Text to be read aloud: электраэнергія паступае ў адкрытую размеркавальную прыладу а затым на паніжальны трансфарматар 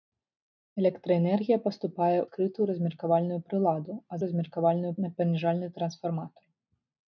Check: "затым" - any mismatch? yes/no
yes